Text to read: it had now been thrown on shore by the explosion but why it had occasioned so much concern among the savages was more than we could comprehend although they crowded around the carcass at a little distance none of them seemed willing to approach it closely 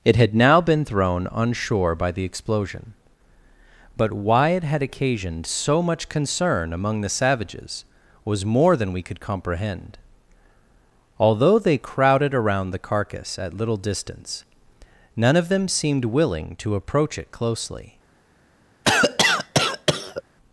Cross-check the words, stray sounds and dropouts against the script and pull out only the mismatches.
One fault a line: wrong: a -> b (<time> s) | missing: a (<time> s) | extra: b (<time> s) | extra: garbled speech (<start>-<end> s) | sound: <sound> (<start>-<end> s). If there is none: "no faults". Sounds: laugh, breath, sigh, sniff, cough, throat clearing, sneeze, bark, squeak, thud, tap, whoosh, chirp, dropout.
missing: a (13.6 s)
sound: cough (18.8-20.2 s)